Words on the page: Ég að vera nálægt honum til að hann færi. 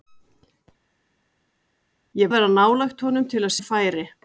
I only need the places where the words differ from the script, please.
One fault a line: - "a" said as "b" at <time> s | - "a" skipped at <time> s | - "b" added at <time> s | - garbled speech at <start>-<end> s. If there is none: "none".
none